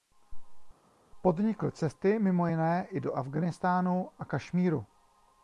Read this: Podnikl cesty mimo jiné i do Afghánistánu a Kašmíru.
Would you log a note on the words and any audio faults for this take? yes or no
no